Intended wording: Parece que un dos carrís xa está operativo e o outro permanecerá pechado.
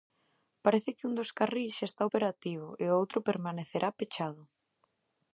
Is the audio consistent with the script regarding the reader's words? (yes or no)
yes